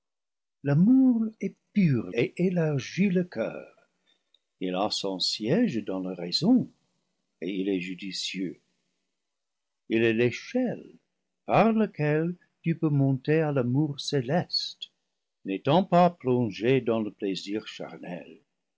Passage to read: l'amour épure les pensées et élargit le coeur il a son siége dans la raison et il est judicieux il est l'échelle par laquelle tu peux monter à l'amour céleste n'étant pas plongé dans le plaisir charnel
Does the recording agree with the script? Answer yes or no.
no